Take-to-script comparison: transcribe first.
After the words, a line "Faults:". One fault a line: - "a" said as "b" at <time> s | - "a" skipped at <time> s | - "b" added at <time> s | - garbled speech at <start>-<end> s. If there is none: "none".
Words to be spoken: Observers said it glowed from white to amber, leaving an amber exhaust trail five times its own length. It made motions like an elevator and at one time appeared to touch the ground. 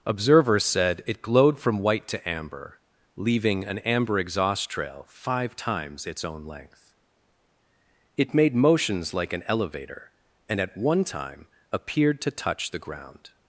Observers said it glowed from white to amber, leaving an amber exhaust trail five times its own length. It made motions like an elevator and at one time appeared to touch the ground.
Faults:
none